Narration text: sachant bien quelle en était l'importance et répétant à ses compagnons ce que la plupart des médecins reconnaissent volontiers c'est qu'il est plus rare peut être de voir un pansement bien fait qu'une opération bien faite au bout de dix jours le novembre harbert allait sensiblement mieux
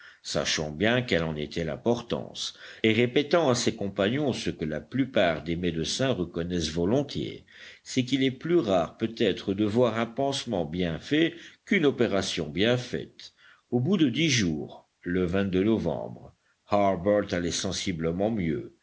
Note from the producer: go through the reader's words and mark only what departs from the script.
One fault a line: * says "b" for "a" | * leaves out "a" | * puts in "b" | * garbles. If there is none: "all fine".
all fine